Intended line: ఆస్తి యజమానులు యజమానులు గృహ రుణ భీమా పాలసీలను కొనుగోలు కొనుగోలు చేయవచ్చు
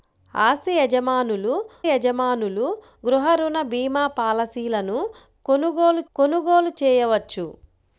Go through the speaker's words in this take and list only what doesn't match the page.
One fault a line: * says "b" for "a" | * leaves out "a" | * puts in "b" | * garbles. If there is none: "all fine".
all fine